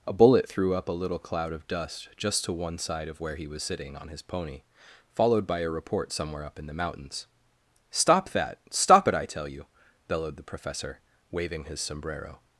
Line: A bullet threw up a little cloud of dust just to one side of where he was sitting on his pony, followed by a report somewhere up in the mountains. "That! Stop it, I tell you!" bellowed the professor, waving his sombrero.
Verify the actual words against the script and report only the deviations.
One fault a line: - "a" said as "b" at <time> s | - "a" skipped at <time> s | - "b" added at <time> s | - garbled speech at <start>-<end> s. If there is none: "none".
- "Stop" added at 7.9 s